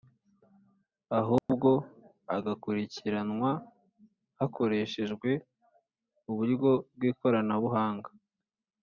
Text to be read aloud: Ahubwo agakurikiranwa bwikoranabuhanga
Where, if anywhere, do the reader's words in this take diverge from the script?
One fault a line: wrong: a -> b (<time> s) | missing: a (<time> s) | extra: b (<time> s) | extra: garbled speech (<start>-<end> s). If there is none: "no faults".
extra: hakoreshejwe uburyo (4.4 s)